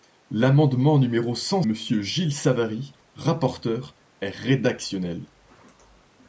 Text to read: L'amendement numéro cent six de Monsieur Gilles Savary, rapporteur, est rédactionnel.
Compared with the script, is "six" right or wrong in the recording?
wrong